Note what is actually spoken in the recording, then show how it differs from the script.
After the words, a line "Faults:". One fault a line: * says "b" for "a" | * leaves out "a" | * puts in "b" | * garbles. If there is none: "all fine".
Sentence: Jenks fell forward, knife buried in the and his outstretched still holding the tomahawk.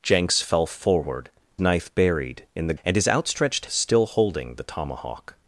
Jenks fell forward, knife buried in the and his outstretched still holding the tomahawk.
Faults:
all fine